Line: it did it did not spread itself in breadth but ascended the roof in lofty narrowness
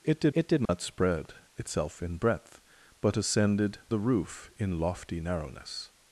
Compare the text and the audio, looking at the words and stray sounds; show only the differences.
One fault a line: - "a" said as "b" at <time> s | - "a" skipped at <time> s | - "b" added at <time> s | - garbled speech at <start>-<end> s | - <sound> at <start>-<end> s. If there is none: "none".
- dropout at 0.7-0.7 s